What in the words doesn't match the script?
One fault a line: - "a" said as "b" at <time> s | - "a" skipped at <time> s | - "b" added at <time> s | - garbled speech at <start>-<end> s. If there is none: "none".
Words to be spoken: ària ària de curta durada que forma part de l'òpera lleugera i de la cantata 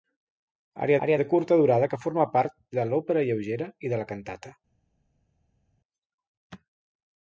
none